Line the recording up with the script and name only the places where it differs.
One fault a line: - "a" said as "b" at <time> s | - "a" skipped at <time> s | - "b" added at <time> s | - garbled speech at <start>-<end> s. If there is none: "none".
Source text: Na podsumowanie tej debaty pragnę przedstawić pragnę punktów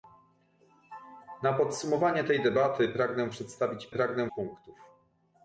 none